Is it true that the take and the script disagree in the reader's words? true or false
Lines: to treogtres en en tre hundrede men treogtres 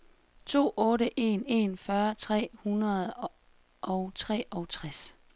true